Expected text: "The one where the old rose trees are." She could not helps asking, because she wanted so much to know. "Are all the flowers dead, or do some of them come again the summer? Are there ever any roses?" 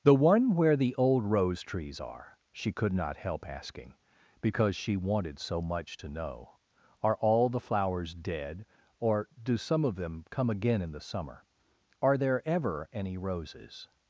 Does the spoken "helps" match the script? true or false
false